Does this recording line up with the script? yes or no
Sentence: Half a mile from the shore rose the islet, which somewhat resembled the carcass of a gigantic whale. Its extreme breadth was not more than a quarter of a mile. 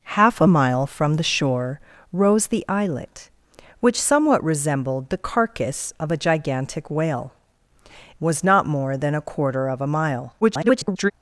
no